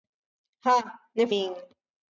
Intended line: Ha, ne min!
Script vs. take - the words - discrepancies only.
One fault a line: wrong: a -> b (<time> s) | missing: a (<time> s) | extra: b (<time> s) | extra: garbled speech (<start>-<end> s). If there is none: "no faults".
no faults